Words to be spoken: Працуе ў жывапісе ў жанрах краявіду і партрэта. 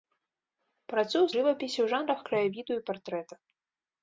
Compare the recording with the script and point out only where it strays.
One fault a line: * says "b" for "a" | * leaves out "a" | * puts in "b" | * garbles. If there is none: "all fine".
all fine